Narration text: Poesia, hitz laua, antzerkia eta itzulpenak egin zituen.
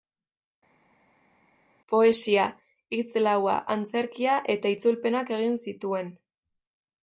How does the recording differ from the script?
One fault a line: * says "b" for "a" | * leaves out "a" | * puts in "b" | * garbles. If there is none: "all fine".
all fine